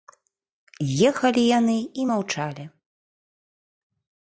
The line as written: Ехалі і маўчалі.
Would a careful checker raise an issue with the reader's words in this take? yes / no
yes